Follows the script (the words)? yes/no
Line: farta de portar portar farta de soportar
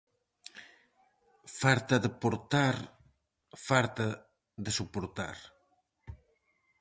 no